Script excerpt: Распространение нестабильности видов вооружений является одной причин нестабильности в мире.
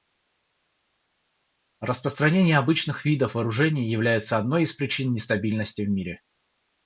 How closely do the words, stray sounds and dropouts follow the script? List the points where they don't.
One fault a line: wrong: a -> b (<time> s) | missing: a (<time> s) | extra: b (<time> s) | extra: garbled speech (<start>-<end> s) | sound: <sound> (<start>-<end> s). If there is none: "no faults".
wrong: нестабильности -> обычных (2.6 s)
extra: из (4.6 s)